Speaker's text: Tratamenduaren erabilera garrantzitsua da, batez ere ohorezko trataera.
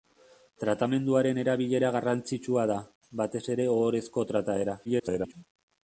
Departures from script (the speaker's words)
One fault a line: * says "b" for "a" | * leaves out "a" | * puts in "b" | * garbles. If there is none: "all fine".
* garbles